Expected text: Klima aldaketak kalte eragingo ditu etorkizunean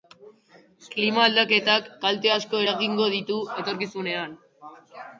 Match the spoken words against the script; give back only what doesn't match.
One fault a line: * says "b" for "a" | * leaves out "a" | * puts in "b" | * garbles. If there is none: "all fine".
* puts in "asko"